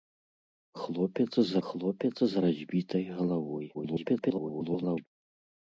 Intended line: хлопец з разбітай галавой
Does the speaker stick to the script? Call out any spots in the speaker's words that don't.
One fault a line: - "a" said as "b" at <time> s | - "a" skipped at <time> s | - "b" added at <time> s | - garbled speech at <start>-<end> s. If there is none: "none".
- "хлопец з" added at 1.7 s
- garbled speech at 3.7-5.1 s